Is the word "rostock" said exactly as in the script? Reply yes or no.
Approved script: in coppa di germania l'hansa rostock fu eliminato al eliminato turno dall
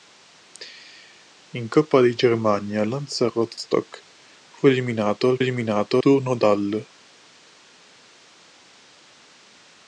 yes